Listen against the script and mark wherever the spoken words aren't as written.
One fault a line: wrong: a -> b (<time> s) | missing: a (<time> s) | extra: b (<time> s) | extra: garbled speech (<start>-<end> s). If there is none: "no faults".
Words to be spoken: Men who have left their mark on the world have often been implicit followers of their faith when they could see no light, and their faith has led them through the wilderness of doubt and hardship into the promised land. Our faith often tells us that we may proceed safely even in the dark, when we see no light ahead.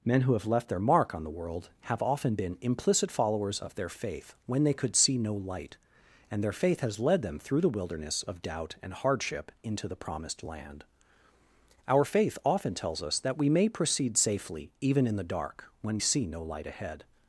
missing: we (16.0 s)